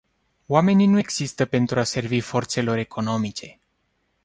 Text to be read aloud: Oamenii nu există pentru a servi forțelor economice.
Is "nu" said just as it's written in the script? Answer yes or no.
yes